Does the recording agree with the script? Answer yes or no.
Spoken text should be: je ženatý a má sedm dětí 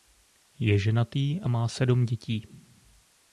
yes